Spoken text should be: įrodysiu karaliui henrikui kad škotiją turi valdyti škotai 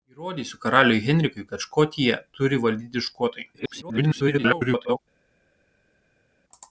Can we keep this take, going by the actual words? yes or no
no